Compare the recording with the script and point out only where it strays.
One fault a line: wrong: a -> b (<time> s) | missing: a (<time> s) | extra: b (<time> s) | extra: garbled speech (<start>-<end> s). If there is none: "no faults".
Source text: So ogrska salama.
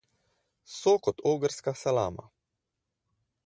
extra: kot (1.0 s)